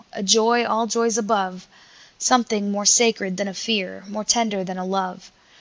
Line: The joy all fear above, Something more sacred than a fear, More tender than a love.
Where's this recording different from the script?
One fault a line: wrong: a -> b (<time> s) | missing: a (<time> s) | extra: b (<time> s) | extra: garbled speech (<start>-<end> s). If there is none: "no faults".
wrong: The -> A (0.1 s)
wrong: fear -> joys (0.9 s)